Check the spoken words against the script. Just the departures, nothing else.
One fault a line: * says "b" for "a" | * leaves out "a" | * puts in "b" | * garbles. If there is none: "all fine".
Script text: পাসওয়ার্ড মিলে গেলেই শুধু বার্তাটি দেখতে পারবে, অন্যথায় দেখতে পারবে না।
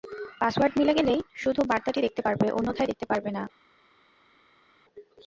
all fine